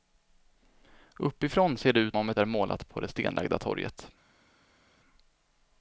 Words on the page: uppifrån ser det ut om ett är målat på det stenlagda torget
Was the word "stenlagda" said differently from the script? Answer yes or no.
no